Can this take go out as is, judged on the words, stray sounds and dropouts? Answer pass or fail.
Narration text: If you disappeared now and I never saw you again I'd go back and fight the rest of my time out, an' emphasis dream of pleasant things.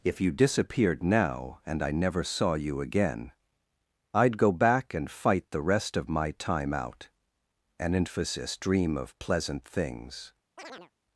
fail